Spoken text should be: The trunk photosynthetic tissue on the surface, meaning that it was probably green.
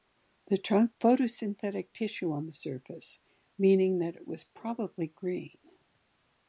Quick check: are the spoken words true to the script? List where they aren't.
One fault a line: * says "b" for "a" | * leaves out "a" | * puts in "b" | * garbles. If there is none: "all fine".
all fine